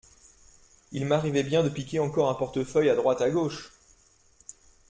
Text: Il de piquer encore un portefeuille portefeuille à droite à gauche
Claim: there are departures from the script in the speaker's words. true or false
true